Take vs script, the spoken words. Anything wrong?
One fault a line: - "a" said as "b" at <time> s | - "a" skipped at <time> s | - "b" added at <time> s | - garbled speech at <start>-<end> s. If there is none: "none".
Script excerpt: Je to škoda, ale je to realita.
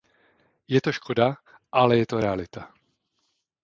none